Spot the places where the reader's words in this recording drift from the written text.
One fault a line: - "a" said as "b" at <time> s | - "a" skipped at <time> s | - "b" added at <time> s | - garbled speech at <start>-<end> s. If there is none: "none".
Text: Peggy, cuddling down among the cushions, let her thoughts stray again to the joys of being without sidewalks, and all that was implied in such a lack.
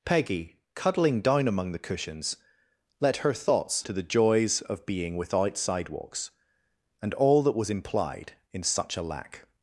- "stray again" skipped at 3.9 s